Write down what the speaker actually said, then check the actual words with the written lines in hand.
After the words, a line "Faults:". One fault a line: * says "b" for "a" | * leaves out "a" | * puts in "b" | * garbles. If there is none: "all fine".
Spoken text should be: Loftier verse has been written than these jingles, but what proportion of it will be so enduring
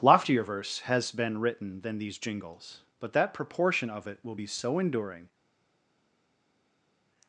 Loftier verse has been written than these jingles, but that proportion of it will be so enduring
Faults:
* says "that" for "what"